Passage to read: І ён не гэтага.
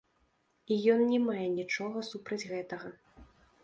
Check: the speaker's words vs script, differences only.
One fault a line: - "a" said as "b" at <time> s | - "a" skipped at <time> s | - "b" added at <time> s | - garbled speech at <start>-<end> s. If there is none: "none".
- "мае нічога супраць" added at 1.3 s